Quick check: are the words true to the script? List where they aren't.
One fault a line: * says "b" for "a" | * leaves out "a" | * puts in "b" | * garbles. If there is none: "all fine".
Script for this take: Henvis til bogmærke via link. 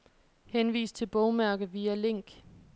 all fine